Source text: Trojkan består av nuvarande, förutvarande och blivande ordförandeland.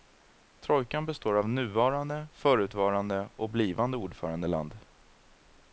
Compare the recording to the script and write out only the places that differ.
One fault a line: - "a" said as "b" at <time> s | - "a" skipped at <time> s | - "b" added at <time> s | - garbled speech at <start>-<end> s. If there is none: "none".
none